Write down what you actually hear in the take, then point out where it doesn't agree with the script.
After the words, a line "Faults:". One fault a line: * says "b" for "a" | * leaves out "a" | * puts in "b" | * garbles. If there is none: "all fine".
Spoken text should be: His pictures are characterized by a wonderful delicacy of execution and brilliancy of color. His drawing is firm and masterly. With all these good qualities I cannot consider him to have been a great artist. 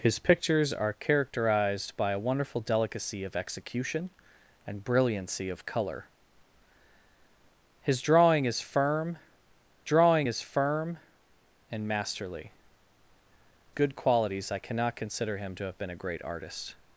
His pictures are characterized by a wonderful delicacy of execution and brilliancy of color. His drawing is firm drawing is firm and masterly. Good qualities I cannot consider him to have been a great artist.
Faults:
* says "drawing is firm and masterly" for "and masterly With all these"